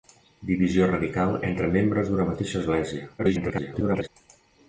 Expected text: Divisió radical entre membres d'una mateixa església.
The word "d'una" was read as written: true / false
true